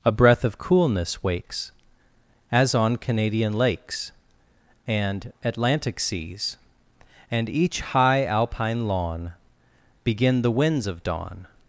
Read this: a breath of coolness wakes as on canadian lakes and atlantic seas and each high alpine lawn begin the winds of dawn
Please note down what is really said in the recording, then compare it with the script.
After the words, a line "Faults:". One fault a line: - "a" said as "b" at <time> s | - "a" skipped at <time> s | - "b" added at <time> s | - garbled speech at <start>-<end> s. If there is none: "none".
a breath of coolness wakes as on canadian lakes and atlantic seas and each high alpine lawn begin the winds of dawn
Faults:
none